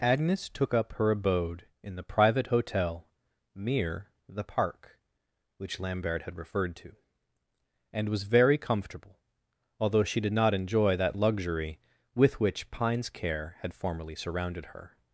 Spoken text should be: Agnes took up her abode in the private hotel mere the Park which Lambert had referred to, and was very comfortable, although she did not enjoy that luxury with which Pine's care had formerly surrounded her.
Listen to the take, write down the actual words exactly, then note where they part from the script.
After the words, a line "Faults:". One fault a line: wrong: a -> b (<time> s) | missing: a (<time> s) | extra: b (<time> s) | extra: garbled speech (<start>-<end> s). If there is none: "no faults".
Agnes took up her abode in the private hotel mere the Park which Lambert had referred to, and was very comfortable, although she did not enjoy that luxury with which Pine's care had formerly surrounded her.
Faults:
no faults